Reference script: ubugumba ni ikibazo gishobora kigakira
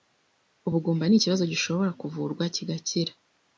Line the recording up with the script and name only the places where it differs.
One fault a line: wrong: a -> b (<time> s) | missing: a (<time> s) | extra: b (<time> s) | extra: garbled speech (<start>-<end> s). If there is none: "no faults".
extra: kuvurwa (2.0 s)